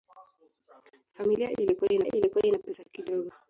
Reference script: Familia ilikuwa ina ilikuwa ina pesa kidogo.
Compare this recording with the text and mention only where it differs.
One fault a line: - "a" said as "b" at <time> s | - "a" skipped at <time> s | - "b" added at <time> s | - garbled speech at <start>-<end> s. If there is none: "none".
none